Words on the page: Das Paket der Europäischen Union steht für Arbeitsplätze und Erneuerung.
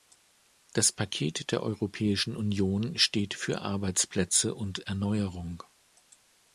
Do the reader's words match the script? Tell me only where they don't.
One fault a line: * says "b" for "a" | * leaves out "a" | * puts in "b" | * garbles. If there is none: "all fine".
all fine